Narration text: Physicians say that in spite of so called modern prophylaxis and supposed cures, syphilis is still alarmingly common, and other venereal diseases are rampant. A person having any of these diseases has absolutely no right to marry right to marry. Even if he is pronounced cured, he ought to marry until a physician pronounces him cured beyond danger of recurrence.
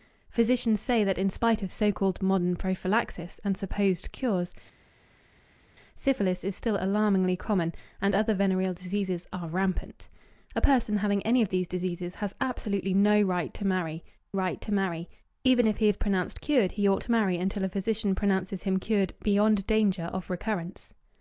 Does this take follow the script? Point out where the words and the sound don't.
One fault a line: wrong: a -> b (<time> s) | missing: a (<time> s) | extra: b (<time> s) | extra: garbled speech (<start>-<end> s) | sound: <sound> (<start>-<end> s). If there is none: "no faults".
no faults